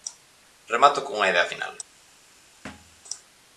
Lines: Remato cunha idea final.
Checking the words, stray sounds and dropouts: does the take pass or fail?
fail